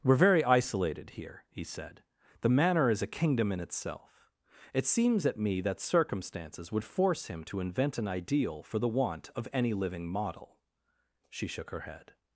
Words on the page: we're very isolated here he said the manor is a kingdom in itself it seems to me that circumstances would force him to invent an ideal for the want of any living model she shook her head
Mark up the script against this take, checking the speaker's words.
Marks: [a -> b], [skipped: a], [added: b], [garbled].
we're very isolated here he said the manor is a kingdom in itself it seems [to -> at] me that circumstances would force him to invent an ideal for the want of any living model she shook her head